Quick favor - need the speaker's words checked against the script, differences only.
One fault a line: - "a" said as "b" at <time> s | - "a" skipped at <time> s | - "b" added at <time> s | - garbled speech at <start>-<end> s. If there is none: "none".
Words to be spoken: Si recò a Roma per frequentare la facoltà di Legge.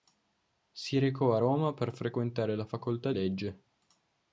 - "di" skipped at 3.1 s